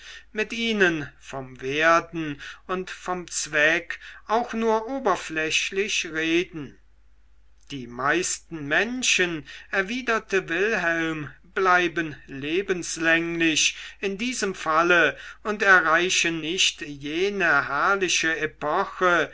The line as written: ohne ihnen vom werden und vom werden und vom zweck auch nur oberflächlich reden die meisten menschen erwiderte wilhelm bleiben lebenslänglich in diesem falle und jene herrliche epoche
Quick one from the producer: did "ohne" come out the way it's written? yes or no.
no